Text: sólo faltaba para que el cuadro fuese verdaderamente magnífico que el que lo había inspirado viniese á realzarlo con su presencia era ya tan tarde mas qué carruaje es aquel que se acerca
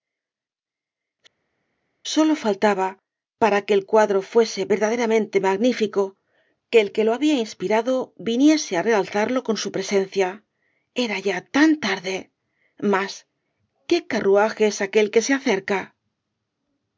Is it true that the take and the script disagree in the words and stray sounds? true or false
false